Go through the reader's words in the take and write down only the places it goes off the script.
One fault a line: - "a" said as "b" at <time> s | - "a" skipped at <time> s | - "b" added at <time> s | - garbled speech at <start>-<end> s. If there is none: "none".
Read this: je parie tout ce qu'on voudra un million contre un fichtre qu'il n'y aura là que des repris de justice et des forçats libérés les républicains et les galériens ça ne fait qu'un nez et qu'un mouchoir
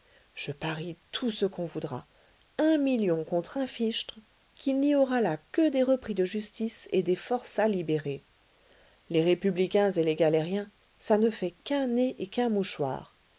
none